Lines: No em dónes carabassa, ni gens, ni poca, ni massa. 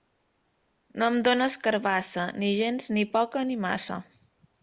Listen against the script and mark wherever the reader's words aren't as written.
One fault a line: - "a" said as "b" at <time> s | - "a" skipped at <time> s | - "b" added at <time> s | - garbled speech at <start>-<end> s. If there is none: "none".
none